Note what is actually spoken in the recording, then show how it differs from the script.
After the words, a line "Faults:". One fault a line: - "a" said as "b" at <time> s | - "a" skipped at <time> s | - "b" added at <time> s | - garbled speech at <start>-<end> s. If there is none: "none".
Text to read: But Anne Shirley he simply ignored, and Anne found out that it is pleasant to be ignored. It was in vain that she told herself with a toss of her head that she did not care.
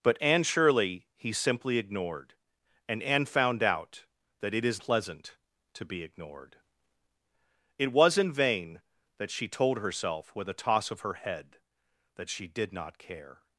But Anne Shirley he simply ignored, and Anne found out that it is pleasant to be ignored. It was in vain that she told herself with a toss of her head that she did not care.
Faults:
none